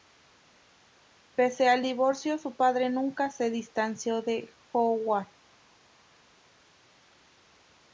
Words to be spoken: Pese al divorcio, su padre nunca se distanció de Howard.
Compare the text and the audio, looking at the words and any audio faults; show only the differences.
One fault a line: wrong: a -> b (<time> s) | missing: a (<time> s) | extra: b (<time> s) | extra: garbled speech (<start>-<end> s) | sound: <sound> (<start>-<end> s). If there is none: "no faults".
no faults